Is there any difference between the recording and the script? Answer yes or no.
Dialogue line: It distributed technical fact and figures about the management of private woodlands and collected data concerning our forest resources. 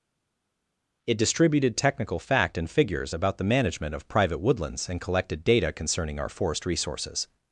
no